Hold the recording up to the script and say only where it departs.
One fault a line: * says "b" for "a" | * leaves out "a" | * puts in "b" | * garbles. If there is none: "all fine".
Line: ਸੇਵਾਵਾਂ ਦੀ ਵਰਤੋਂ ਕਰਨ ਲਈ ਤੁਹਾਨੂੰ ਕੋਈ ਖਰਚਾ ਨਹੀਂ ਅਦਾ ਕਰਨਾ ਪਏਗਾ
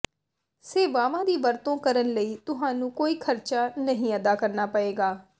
all fine